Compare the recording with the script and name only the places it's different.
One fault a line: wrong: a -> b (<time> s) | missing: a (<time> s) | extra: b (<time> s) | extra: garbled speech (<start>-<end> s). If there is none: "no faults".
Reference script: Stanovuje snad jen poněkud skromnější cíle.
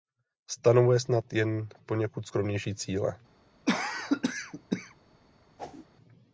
no faults